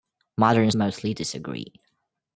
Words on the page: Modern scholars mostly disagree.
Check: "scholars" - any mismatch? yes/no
yes